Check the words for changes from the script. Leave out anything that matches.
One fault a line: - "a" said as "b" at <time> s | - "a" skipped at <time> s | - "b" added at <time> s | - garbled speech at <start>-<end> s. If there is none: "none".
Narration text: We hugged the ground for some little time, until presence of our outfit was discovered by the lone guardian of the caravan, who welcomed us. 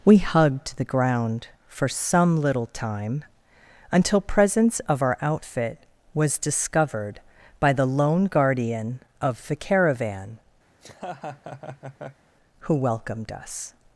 none